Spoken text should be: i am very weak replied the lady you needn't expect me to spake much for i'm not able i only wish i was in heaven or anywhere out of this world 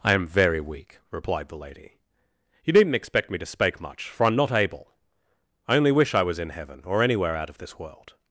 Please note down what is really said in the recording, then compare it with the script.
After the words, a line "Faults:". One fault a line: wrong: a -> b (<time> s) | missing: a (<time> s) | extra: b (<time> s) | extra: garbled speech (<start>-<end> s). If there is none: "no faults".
i am very weak replied the lady you needn't expect me to spake much for i'm not able i only wish i was in heaven or anywhere out of this world
Faults:
no faults